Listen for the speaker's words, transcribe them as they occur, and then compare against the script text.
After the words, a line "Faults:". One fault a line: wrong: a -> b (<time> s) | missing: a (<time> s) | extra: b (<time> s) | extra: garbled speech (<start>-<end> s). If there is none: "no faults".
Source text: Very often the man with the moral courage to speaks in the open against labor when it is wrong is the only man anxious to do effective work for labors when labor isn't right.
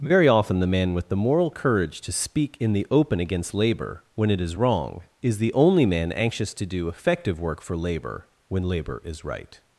Very often the man with the moral courage to speak in the open against labor when it is wrong is the only man anxious to do effective work for labor when labor is right.
Faults:
wrong: speaks -> speak (2.1 s)
wrong: labors -> labor (7.8 s)
wrong: isn't -> is (9.0 s)